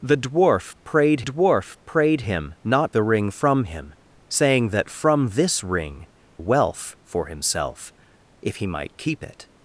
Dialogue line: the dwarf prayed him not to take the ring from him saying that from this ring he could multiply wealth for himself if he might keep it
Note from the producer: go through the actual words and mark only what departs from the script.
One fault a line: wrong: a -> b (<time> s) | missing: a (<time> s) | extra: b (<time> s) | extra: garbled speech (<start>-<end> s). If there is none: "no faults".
extra: dwarf prayed (1.2 s)
missing: to take (2.9 s)
missing: he could multiply (6.1 s)